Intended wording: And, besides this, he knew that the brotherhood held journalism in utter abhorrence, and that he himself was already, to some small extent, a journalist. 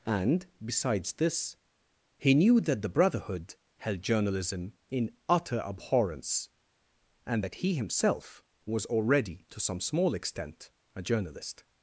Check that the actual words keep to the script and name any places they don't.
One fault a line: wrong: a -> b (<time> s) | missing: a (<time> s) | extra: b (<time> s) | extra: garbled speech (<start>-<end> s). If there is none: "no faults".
no faults